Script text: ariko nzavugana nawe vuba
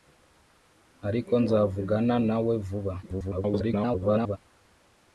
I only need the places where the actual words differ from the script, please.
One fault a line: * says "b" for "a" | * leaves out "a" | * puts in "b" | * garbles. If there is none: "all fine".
* garbles